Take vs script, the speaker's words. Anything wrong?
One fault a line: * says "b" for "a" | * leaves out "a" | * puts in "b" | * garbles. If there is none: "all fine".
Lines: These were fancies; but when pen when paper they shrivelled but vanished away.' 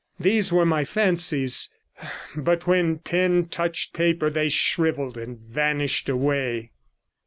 * puts in "my"
* says "touched" for "when"
* says "and" for "but"